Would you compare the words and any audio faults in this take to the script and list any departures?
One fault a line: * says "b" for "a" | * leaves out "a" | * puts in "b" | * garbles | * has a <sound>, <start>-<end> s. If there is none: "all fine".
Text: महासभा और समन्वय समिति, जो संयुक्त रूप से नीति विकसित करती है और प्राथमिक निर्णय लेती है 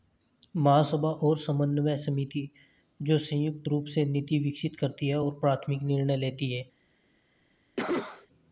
* has a cough, 7.8-8.3 s